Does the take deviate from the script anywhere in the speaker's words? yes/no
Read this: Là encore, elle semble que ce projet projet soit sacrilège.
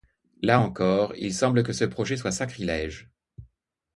yes